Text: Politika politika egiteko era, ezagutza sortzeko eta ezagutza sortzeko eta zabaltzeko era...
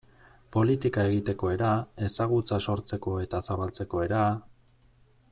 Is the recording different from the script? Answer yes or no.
yes